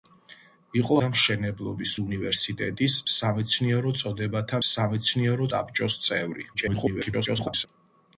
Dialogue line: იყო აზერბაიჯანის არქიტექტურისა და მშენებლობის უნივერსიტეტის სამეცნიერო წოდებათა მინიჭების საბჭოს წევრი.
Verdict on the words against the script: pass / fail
fail